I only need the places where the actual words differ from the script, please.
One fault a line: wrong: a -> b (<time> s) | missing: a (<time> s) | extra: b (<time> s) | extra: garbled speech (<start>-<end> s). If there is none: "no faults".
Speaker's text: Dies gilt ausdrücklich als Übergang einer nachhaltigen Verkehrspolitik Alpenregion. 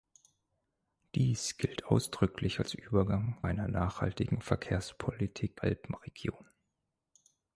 no faults